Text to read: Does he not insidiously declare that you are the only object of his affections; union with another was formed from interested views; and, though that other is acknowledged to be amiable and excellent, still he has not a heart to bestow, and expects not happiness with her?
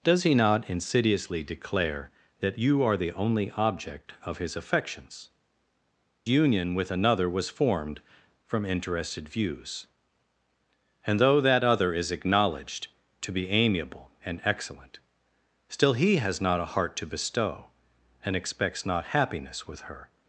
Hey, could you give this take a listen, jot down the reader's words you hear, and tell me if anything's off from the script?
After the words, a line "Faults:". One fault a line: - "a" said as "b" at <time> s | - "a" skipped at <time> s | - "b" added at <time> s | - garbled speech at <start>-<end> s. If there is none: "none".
Does he not insidiously declare that you are the only object of his affections; union with another was formed from interested views; and, though that other is acknowledged to be amiable and excellent, still he has not a heart to bestow, and expects not happiness with her?
Faults:
none